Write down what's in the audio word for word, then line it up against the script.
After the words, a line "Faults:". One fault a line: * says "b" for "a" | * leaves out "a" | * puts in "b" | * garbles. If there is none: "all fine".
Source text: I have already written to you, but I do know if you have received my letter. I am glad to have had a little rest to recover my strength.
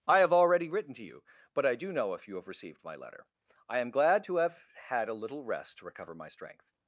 I have already written to you, but I do know if you have received my letter. I am glad to have had a little rest to recover my strength.
Faults:
all fine